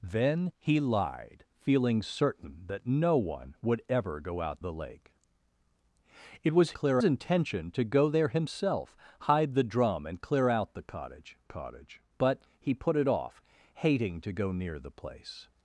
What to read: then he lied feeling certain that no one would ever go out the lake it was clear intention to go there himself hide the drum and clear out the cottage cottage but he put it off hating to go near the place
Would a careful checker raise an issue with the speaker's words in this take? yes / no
no